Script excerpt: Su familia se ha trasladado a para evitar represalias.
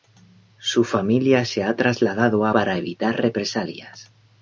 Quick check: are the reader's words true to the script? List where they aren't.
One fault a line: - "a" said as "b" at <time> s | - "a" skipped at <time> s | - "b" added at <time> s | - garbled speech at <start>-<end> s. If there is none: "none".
none